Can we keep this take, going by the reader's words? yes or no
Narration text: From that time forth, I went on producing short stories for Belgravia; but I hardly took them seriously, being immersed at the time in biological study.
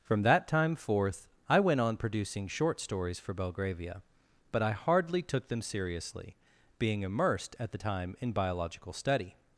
yes